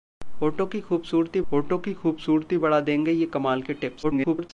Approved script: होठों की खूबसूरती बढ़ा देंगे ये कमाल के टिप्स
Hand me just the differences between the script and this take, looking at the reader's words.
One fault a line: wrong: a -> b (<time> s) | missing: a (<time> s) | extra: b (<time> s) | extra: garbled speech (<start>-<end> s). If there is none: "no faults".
extra: होठों की खूबसूरती (1.5 s)
extra: garbled speech (4.0-4.5 s)